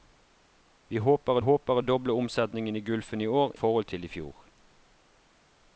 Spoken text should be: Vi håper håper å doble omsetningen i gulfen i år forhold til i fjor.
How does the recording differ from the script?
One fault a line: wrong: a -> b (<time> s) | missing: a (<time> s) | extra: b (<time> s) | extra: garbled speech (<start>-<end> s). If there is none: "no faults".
no faults